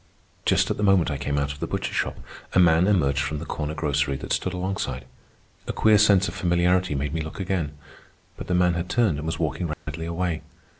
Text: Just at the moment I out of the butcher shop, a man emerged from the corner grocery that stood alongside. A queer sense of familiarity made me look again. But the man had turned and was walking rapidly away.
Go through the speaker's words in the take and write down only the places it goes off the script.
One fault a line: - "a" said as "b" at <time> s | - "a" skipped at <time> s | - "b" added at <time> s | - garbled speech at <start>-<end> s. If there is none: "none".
- "came" added at 1.2 s